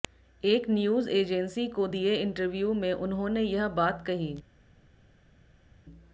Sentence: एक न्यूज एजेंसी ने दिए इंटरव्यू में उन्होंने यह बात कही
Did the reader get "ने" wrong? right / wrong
wrong